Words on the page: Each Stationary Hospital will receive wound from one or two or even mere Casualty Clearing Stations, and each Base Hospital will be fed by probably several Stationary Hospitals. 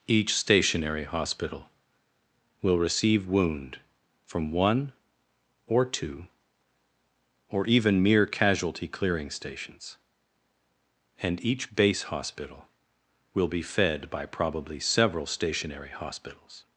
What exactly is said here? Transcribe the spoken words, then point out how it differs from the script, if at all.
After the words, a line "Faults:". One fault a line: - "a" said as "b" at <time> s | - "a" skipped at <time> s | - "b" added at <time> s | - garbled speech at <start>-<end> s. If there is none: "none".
Each Stationary Hospital will receive wound from one or two or even mere Casualty Clearing Stations, and each Base Hospital will be fed by probably several Stationary Hospitals.
Faults:
none